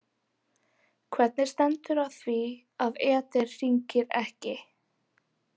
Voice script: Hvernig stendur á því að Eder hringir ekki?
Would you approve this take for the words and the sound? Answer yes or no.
yes